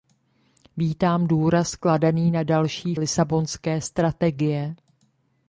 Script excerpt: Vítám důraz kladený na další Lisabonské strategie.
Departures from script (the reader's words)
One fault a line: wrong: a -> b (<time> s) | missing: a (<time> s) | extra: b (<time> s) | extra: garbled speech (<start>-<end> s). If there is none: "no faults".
no faults